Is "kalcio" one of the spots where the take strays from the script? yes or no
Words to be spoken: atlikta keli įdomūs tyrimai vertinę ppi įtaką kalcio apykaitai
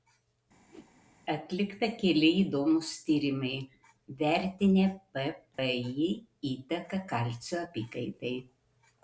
no